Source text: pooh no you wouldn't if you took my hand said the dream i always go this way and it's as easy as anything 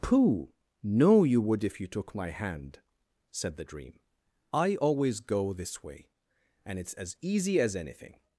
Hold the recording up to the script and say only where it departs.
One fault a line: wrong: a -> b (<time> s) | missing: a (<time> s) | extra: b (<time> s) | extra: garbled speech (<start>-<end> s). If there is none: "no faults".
wrong: wouldn't -> would (1.4 s)